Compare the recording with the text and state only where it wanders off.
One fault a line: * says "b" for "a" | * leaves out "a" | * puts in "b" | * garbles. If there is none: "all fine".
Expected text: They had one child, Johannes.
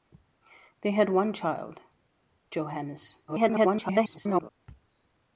* garbles